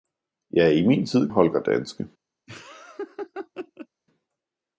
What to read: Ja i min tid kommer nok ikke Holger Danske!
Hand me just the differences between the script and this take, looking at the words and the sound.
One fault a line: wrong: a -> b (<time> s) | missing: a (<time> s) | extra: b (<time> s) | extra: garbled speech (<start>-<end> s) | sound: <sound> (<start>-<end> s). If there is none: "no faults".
missing: kommer nok ikke (1.3 s)
sound: laugh (2.5-3.9 s)